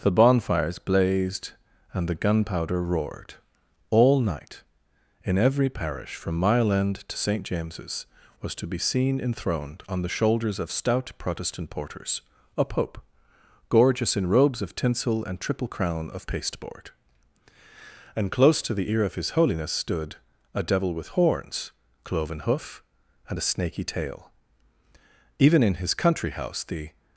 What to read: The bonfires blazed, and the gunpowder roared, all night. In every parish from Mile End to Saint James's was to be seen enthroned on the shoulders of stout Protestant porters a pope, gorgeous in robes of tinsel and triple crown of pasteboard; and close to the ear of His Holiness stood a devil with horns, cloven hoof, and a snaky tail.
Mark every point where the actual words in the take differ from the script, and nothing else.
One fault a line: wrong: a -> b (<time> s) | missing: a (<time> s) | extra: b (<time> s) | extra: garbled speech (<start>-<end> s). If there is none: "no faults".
extra: Even in his country house the (25.4 s)